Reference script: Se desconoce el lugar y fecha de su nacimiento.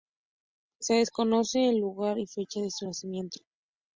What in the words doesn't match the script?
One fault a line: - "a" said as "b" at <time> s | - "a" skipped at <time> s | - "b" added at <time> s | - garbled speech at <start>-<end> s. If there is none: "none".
none